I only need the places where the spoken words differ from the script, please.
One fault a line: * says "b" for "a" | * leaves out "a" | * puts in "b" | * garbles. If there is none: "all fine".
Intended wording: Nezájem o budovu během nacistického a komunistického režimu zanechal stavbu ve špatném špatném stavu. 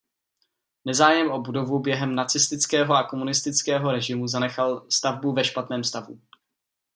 * leaves out "špatném"